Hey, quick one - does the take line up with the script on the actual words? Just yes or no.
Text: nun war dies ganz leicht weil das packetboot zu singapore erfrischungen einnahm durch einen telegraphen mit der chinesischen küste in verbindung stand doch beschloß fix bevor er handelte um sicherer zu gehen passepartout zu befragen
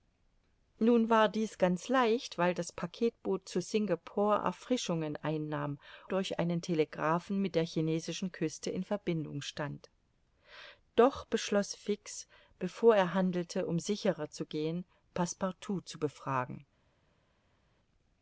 yes